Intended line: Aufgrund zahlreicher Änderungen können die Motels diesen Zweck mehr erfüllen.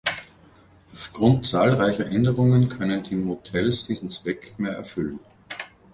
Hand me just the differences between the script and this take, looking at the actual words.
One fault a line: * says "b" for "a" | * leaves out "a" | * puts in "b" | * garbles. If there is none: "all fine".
all fine